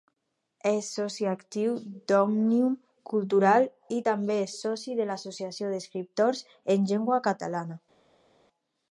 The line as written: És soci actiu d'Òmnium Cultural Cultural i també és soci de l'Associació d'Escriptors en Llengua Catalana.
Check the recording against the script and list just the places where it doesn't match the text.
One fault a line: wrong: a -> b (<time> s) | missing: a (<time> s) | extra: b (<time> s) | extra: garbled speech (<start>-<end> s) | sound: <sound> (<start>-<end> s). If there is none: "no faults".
missing: Cultural (3.7 s)